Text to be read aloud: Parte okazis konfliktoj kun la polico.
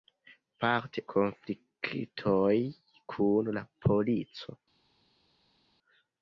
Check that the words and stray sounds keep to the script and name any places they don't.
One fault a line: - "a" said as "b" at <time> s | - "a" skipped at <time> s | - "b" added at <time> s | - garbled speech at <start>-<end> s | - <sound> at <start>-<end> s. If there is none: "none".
- "okazis" skipped at 1.0 s